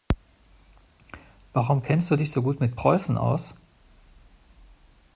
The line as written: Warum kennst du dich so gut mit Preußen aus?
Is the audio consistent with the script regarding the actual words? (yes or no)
yes